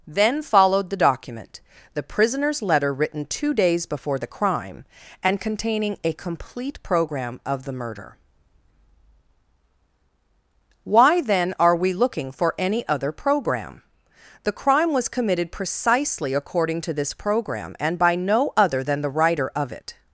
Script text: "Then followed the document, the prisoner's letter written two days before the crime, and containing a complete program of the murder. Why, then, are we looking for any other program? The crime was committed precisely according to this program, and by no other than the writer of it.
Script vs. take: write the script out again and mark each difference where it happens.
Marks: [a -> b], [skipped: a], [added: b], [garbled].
"Then followed the document, the prisoner's letter written two days before the crime, and containing a complete program of the murder. Why, then, are we looking for any other program? The crime was committed precisely according to this program, and by no other than the writer of it.